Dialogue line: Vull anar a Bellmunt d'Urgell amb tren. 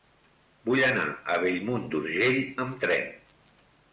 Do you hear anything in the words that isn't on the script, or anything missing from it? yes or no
no